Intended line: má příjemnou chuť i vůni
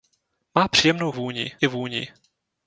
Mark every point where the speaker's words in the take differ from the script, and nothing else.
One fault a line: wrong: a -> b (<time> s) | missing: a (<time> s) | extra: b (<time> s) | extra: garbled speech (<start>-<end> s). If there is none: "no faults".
wrong: chuť -> vůni (1.1 s)